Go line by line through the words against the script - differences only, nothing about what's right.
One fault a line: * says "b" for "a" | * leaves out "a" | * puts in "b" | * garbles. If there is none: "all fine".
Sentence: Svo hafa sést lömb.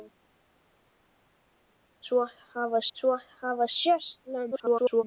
* puts in "svo hafa"
* garbles